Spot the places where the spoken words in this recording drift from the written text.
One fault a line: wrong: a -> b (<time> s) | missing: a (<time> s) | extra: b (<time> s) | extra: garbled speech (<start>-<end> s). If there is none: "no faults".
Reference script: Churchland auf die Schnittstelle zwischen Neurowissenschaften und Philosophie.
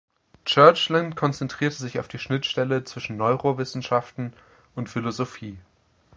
extra: konzentrierte sich (1.1 s)